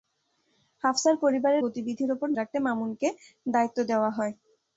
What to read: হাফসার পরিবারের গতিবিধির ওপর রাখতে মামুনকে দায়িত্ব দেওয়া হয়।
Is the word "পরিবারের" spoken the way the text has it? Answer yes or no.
yes